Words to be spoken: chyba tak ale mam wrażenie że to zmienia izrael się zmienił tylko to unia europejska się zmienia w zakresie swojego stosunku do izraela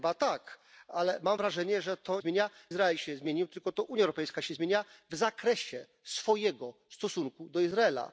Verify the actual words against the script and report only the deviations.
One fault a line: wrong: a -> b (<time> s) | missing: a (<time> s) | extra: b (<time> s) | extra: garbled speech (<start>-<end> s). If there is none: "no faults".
no faults